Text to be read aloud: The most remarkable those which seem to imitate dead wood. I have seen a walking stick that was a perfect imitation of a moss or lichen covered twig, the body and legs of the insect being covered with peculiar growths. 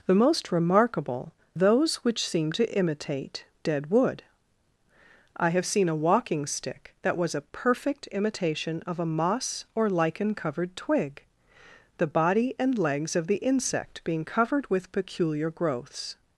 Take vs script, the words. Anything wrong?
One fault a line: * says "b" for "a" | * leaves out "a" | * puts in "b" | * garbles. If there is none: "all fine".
all fine